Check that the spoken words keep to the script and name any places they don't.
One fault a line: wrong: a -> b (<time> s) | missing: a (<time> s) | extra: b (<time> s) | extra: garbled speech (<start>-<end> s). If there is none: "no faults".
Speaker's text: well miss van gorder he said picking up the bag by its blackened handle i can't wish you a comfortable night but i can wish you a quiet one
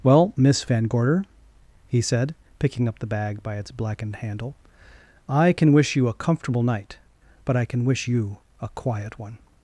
wrong: can't -> can (5.5 s)